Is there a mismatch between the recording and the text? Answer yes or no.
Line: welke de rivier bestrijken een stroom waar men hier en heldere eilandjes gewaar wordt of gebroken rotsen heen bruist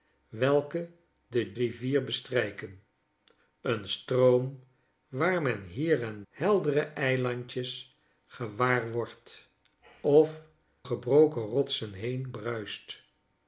no